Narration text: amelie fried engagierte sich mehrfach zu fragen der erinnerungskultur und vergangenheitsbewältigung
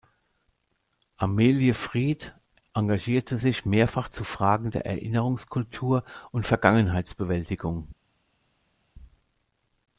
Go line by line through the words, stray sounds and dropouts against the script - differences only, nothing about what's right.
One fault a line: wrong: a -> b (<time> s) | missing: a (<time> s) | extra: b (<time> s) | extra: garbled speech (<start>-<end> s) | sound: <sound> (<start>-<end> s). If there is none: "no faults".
no faults